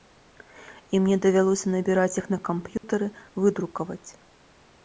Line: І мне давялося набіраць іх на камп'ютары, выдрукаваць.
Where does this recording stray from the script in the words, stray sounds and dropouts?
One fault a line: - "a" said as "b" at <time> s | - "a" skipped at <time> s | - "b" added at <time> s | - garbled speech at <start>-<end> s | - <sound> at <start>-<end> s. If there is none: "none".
- dropout at 2.8-2.8 s